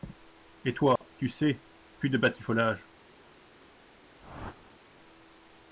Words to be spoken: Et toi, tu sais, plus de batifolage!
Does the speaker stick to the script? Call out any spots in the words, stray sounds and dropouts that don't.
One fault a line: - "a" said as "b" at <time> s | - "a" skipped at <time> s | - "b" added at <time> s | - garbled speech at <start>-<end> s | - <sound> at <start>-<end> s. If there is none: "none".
- dropout at 1.0-1.0 s
- whoosh at 4.2-4.8 s